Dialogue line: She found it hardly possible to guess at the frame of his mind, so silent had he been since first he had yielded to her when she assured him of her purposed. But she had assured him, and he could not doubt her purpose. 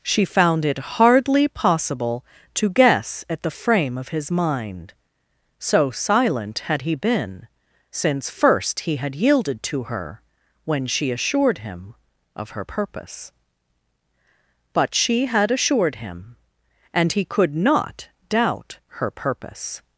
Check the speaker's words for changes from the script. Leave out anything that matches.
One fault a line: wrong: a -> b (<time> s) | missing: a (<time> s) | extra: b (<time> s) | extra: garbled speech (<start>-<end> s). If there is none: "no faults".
wrong: purposed -> purpose (12.6 s)